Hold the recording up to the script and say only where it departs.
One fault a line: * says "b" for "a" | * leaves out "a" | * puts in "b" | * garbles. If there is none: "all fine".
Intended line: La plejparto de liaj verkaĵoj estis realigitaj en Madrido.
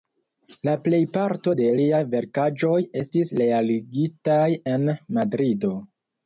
all fine